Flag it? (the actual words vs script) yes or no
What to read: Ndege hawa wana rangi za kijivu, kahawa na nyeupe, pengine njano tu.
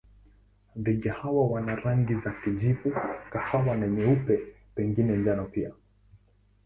yes